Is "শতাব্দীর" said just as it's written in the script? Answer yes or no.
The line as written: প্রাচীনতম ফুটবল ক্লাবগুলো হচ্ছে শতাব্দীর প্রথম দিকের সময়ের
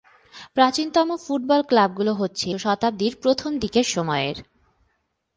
yes